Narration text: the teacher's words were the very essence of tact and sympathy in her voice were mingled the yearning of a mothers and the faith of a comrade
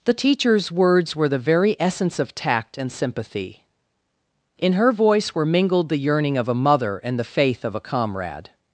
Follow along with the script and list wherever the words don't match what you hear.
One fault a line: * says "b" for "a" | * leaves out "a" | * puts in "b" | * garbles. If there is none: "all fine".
* says "mother" for "mothers"